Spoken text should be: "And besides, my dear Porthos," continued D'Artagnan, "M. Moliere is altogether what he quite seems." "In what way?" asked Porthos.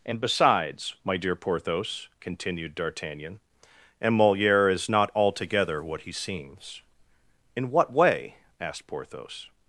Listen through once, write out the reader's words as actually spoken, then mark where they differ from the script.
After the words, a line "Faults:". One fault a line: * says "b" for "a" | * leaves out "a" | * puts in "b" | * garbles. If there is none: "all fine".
"And besides, my dear Porthos," continued D'Artagnan, "M. Moliere is not altogether what he seems." "In what way?" asked Porthos.
Faults:
* puts in "not"
* leaves out "quite"